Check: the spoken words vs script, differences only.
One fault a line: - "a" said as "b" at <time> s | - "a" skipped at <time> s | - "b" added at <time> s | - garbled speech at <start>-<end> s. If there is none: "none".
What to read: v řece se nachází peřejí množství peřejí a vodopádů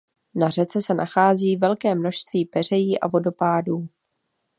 - "v" said as "na" at 0.3 s
- "peřejí" said as "velké" at 1.6 s